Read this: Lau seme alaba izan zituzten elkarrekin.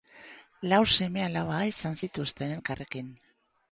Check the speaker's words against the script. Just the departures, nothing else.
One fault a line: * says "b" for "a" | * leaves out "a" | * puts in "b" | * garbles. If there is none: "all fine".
all fine